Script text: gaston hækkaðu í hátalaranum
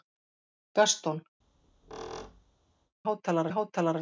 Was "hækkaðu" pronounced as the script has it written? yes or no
no